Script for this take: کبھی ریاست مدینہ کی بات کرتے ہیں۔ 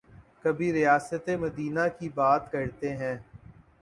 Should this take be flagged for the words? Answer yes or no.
no